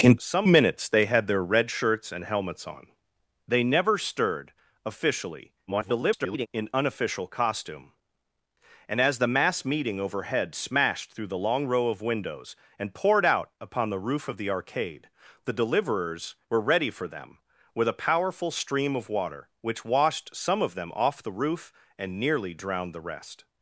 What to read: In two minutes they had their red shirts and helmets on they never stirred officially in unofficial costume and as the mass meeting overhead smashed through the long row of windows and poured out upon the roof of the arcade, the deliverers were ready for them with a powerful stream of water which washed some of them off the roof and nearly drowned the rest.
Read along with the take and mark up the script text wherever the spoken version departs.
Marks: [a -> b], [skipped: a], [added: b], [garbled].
In [two -> some] minutes they had their red shirts and helmets on they never stirred officially [garbled] in unofficial costume and as the mass meeting overhead smashed through the long row of windows and poured out upon the roof of the arcade, the deliverers were ready for them with a powerful stream of water which washed some of them off the roof and nearly drowned the rest.